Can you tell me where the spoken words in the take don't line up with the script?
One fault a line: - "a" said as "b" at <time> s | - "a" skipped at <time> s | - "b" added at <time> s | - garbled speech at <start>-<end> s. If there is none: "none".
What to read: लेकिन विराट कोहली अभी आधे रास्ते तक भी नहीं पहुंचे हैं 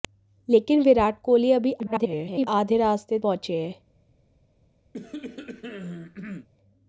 - garbled speech at 1.8-2.5 s
- "तक भी नहीं" skipped at 3.2 s